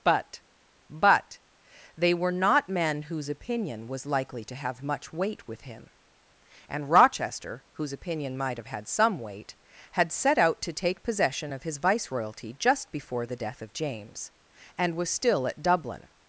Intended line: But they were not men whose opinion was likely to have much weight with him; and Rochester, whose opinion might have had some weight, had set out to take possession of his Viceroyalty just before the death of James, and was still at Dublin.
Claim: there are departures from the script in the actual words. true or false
true